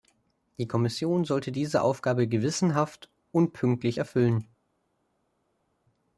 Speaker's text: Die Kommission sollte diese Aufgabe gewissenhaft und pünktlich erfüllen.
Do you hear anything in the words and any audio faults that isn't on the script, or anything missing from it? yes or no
no